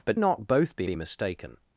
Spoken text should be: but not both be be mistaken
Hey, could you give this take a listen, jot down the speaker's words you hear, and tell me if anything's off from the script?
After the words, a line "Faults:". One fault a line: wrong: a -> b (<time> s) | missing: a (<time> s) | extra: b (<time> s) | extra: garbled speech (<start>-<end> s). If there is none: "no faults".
but not both be be mistaken
Faults:
no faults